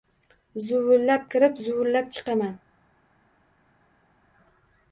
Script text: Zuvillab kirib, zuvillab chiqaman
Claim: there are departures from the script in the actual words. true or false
false